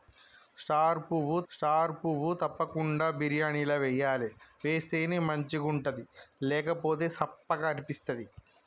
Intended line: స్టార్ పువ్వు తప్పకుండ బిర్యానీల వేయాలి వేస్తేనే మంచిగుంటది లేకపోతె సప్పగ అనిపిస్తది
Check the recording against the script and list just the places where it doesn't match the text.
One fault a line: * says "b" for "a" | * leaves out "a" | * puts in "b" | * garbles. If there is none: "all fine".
* puts in "స్టార్ పువ్వు"